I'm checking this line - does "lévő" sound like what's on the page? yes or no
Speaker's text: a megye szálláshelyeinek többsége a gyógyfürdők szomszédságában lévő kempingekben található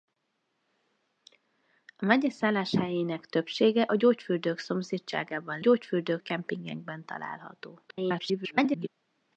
no